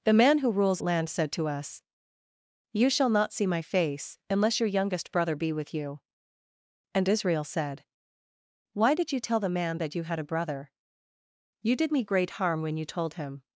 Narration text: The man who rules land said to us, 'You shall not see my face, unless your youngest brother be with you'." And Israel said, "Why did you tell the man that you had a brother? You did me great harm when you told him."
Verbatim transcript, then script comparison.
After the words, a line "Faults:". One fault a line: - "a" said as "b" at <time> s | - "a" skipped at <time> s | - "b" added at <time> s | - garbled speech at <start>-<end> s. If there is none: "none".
The man who rules land said to us, 'You shall not see my face, unless your youngest brother be with you'." And Israel said, "Why did you tell the man that you had a brother? You did me great harm when you told him."
Faults:
none